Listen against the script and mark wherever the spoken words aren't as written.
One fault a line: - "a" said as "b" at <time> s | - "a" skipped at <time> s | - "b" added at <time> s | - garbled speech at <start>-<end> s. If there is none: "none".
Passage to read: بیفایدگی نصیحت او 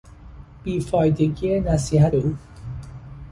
none